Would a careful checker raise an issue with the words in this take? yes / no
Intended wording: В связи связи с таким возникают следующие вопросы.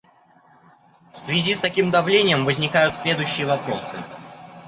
yes